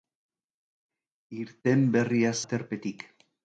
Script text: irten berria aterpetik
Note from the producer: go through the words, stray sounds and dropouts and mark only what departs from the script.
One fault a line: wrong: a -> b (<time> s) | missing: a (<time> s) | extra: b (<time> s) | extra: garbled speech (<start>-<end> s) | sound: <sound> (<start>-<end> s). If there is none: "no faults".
no faults